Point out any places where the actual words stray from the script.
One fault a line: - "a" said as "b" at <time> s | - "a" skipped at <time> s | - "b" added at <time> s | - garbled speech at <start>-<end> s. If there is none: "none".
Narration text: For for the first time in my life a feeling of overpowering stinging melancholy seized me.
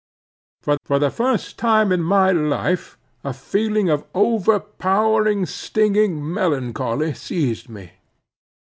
none